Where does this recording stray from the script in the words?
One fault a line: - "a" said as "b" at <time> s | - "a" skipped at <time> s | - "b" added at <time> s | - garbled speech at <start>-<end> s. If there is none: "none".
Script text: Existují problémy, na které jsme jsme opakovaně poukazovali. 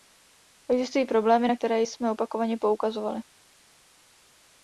- "jsme" skipped at 2.1 s